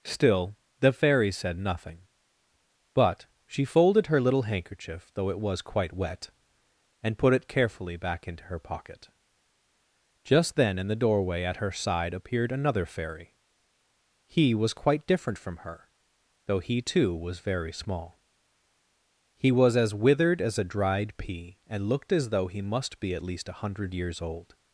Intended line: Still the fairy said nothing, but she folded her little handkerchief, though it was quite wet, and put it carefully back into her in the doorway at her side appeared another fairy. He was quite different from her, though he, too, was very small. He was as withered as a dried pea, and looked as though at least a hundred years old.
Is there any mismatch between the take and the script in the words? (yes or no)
yes